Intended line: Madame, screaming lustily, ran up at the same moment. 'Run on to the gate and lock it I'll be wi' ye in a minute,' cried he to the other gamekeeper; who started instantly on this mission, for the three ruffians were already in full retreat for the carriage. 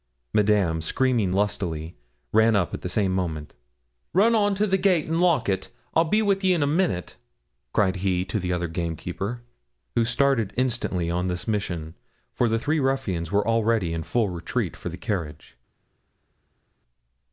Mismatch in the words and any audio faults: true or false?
false